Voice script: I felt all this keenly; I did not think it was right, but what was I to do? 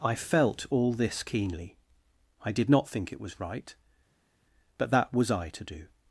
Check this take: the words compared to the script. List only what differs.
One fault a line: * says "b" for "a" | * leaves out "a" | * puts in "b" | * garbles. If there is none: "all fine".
* says "that" for "what"